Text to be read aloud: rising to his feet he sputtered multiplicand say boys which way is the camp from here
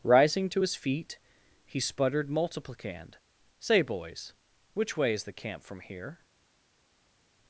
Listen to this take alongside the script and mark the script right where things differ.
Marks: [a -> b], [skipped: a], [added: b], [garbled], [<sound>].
rising to his feet he sputtered multiplicand say boys which way is the camp from here